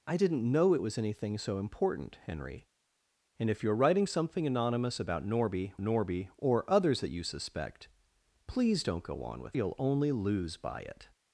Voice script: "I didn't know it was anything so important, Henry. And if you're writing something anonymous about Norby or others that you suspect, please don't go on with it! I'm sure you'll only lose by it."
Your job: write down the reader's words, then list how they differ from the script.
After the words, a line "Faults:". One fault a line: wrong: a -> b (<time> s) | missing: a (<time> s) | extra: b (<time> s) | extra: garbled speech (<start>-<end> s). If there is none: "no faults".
"I didn't know it was anything so important, Henry. And if you're writing something anonymous about Norby Norby or others that you suspect, please don't go on with you'll only lose by it."
Faults:
extra: Norby (5.8 s)
missing: it I'm sure (9.6 s)